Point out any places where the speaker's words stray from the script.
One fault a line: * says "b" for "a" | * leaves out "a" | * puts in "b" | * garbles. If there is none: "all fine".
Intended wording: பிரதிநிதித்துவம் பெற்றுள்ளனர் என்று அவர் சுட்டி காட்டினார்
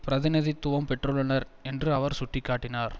all fine